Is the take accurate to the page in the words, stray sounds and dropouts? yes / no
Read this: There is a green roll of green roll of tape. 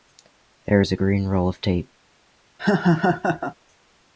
no